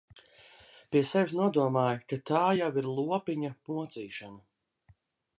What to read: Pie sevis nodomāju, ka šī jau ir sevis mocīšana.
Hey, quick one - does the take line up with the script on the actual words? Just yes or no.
no